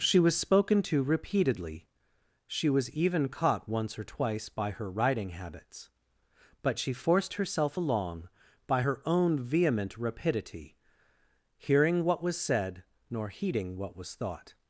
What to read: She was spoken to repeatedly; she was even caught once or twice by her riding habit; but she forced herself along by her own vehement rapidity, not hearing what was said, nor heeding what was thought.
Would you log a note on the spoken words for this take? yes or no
yes